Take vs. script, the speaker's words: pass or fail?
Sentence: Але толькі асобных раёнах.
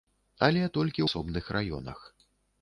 pass